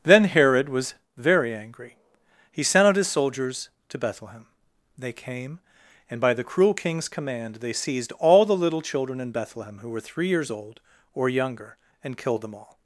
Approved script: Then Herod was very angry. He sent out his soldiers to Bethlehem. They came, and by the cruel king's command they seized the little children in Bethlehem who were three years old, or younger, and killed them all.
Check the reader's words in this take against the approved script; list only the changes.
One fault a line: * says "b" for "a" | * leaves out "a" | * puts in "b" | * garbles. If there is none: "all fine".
* puts in "all"